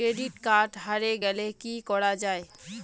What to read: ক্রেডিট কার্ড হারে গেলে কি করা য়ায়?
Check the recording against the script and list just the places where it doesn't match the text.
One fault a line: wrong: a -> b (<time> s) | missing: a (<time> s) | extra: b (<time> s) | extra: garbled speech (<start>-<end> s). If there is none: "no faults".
no faults